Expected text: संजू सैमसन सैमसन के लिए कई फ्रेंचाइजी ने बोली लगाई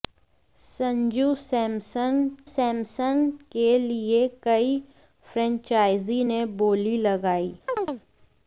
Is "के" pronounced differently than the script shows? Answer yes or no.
no